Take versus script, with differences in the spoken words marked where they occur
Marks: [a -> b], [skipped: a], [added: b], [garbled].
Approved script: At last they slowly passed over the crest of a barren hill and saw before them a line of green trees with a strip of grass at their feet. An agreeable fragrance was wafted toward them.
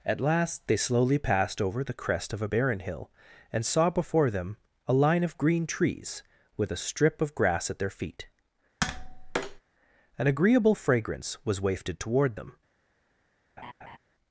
At last they slowly passed over the crest of a barren hill and saw before them a line of green trees with a strip of grass at their feet. An agreeable fragrance was wafted toward them.